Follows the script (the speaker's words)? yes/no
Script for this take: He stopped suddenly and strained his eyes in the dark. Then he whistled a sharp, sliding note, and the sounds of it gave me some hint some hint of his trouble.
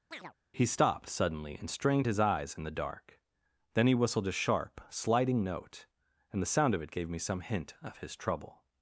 no